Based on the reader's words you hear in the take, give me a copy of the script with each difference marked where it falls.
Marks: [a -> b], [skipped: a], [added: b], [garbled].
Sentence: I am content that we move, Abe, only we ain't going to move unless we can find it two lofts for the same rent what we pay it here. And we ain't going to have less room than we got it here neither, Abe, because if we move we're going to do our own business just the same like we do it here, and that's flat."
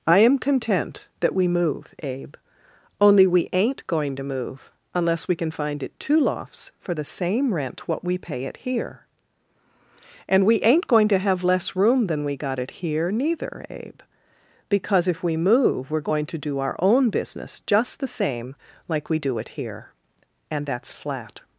I am content that we move, Abe, only we ain't going to move unless we can find it two lofts for the same rent what we pay it here. And we ain't going to have less room than we got it here neither, Abe, because if we move we're going to do our own business just the same like we do it here, and that's flat."